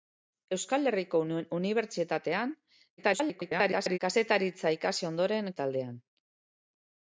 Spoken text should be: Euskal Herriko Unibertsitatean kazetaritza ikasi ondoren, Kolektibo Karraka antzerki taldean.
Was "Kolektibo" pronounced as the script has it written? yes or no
no